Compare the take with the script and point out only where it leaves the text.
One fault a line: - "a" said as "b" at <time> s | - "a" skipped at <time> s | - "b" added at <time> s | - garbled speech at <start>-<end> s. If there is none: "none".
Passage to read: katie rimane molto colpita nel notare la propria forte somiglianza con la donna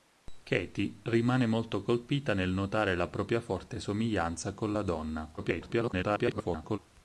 - garbled speech at 5.4-6.8 s